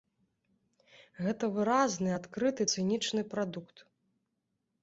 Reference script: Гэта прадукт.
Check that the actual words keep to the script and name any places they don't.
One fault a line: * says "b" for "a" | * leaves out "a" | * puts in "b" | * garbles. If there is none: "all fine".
* puts in "выразны адкрыты цынічны"